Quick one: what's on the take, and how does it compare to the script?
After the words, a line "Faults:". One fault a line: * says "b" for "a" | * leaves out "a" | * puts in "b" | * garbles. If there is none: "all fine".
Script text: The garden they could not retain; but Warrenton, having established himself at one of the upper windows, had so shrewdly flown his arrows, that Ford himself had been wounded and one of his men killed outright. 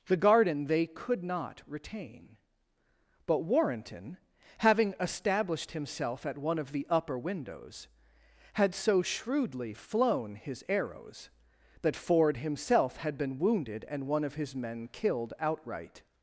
The garden they could not retain; but Warrenton, having established himself at one of the upper windows, had so shrewdly flown his arrows, that Ford himself had been wounded and one of his men killed outright.
Faults:
all fine